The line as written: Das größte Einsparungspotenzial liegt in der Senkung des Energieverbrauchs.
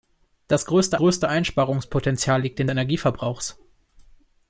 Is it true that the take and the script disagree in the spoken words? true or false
true